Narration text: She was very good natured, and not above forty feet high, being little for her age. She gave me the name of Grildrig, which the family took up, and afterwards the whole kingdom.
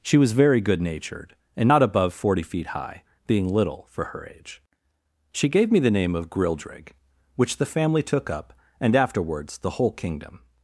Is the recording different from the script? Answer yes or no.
no